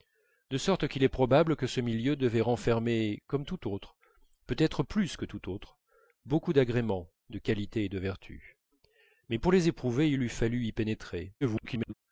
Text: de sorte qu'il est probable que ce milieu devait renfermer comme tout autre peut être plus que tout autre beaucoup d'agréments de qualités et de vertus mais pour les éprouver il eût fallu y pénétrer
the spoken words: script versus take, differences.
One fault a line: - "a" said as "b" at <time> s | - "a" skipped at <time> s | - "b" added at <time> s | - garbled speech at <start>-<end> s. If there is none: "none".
- garbled speech at 11.4-11.9 s